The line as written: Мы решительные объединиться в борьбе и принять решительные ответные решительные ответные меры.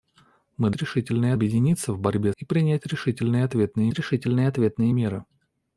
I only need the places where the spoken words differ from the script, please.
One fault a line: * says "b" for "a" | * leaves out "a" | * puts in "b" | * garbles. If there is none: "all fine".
all fine